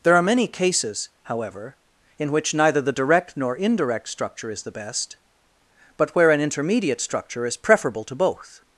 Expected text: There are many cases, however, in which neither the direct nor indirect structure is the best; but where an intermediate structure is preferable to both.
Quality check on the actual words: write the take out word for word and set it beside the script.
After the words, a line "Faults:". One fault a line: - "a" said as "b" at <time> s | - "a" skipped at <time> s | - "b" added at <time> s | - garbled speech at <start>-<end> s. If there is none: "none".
There are many cases, however, in which neither the direct nor indirect structure is the best; but where an intermediate structure is preferable to both.
Faults:
none